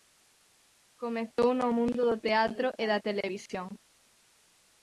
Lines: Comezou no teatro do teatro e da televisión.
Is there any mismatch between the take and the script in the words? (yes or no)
yes